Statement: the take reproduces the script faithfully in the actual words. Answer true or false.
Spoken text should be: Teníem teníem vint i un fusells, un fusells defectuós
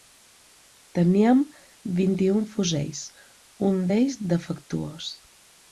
false